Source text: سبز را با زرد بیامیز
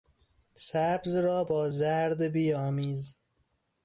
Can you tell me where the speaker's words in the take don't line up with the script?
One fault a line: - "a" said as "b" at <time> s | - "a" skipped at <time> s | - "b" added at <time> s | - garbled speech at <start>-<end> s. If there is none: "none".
none